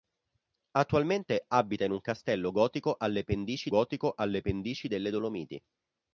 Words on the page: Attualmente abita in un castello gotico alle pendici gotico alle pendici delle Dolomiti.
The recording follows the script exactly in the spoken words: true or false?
true